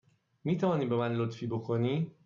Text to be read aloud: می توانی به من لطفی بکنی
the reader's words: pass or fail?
pass